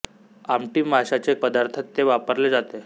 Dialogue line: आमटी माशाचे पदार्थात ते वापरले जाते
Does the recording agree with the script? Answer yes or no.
yes